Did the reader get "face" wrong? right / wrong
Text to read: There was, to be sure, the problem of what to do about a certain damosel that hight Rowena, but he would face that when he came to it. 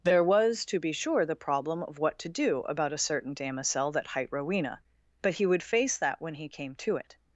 right